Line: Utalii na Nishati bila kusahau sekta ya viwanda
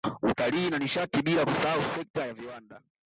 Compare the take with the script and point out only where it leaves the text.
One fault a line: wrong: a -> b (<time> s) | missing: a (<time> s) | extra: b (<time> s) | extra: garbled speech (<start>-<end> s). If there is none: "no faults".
no faults